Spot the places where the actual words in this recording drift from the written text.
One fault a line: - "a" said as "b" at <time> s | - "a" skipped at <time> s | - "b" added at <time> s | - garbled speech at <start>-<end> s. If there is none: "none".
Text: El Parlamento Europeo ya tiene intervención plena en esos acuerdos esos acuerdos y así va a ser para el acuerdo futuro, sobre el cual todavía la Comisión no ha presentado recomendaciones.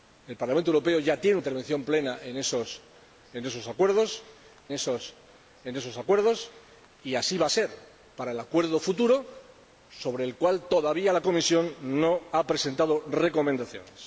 none